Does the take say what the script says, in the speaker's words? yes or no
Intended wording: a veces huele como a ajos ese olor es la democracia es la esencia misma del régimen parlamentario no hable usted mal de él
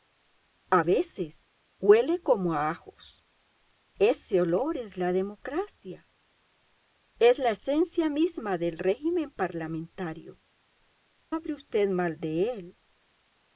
no